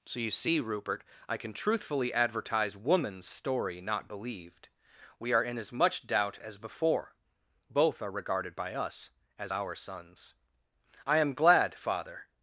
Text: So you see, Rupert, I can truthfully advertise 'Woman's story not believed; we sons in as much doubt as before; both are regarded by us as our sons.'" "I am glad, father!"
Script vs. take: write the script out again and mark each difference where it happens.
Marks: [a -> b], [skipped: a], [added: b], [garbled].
So you see, Rupert, I can truthfully advertise 'Woman's story not believed; we [sons -> are] in as much doubt as before; both are regarded by us as our sons.'" "I am glad, father!"